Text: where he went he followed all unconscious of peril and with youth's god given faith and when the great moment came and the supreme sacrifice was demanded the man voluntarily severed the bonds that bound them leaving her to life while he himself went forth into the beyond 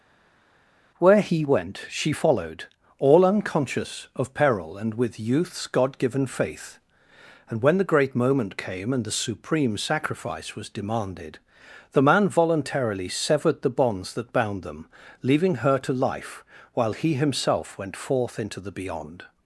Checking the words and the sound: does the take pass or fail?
fail